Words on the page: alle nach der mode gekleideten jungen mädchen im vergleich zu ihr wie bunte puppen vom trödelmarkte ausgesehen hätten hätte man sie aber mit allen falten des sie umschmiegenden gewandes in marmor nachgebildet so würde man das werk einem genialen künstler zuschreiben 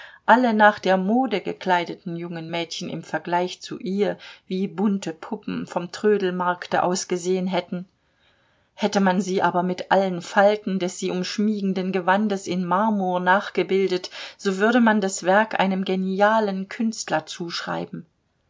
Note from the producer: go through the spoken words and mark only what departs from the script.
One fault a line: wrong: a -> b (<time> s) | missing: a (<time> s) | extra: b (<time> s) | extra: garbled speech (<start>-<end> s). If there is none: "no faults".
no faults